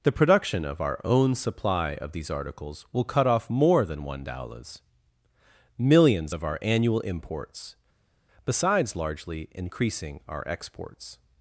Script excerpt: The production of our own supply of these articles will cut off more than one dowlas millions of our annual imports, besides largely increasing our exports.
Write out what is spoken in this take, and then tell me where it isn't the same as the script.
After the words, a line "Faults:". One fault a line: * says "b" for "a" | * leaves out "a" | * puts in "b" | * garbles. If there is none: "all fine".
The production of our own supply of these articles will cut off more than one dowlas millions of our annual imports, besides largely increasing our exports.
Faults:
all fine